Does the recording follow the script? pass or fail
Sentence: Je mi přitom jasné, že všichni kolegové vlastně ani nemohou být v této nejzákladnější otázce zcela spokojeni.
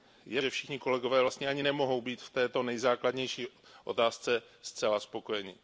fail